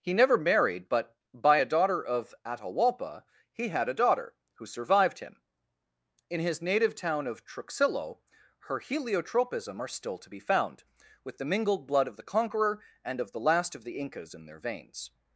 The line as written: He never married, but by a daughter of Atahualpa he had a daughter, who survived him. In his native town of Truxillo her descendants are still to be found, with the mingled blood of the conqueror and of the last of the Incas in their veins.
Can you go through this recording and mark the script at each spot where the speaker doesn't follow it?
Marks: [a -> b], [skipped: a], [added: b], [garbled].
He never married, but by a daughter of Atahualpa he had a daughter, who survived him. In his native town of Truxillo her [descendants -> heliotropism] are still to be found, with the mingled blood of the conqueror and of the last of the Incas in their veins.